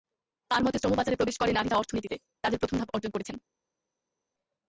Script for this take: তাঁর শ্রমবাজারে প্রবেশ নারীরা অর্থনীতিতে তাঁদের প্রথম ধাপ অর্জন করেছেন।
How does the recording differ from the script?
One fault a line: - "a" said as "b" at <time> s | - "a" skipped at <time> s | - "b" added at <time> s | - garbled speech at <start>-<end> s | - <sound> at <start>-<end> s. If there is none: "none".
- "মতে" added at 0.6 s
- "করে" added at 1.4 s